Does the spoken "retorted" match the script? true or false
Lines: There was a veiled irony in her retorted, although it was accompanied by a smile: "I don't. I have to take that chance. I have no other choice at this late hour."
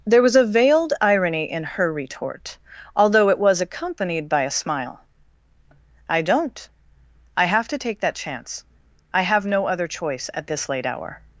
false